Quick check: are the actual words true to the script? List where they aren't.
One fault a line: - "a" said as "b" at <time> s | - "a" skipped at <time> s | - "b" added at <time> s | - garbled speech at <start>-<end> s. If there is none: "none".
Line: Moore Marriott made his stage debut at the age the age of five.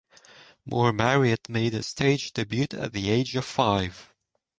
- "the age" skipped at 3.3 s